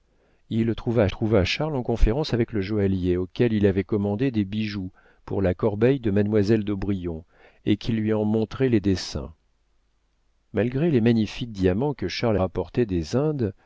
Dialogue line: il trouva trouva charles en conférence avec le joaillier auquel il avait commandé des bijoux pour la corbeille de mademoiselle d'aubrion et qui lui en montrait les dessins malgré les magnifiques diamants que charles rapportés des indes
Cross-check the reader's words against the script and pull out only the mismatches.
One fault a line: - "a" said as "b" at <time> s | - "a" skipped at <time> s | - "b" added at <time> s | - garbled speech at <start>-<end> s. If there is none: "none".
none